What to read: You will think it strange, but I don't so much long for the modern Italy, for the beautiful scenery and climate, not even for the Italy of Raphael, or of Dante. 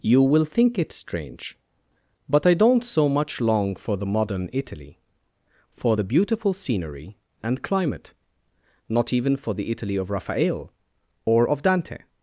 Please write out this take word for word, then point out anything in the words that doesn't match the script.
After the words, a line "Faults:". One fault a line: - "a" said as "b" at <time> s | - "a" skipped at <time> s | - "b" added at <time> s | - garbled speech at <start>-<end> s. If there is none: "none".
You will think it strange, but I don't so much long for the modern Italy, for the beautiful scenery and climate, not even for the Italy of Raphael, or of Dante.
Faults:
none